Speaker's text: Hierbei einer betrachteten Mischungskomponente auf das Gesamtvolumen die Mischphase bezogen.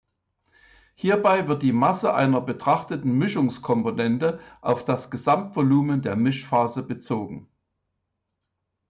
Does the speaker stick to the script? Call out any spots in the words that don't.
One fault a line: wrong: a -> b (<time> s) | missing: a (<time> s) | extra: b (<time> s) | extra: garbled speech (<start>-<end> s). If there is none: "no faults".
extra: wird die Masse (1.5 s)
wrong: die -> der (6.0 s)